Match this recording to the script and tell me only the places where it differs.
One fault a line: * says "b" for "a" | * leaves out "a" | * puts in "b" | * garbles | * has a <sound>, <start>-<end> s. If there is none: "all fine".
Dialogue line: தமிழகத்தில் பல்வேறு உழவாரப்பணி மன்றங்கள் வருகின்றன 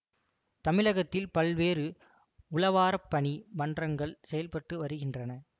* puts in "செயல்பட்டு"